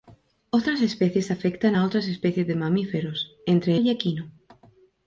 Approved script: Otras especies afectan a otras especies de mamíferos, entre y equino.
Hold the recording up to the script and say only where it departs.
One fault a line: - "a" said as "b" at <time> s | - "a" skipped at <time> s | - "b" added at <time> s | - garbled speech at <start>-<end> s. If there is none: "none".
none